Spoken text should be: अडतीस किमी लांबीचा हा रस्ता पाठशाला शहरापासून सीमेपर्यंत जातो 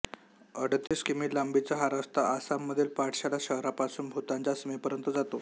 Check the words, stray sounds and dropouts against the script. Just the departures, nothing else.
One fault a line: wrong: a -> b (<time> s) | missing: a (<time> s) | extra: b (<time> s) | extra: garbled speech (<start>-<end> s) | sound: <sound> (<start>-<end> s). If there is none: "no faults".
sound: dropout (0.9-0.9 s)
extra: आसाममधील (2.3 s)
extra: भूतानच्या (4.1 s)